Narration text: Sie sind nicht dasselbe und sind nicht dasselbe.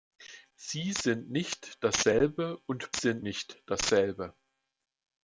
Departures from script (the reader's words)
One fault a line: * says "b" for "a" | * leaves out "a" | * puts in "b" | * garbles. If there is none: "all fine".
all fine